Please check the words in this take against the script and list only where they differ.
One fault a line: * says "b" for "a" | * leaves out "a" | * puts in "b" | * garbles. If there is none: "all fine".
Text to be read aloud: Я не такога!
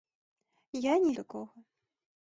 all fine